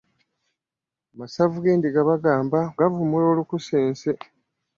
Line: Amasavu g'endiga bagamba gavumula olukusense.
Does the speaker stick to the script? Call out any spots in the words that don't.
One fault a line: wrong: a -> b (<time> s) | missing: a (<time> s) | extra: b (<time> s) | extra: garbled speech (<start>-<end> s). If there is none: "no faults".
no faults